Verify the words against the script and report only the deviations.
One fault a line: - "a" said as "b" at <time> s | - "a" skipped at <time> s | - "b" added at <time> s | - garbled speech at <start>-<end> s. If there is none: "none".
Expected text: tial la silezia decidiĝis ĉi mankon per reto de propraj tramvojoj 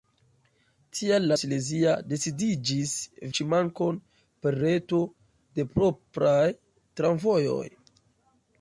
none